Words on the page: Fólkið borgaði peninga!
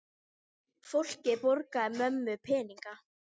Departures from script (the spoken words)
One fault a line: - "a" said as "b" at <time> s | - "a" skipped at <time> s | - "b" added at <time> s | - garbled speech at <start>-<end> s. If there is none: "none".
- "mömmu" added at 2.0 s